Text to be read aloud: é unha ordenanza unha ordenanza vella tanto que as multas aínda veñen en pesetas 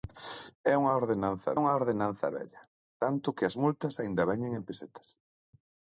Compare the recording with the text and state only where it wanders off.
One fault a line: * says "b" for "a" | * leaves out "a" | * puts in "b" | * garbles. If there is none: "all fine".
all fine